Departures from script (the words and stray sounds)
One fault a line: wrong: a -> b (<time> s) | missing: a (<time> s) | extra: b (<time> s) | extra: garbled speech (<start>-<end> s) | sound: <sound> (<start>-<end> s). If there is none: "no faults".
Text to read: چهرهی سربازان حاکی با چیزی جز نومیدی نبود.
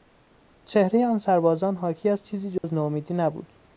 extra: آن (1.0 s)
wrong: با -> از (2.1 s)
sound: dropout (2.6-2.6 s)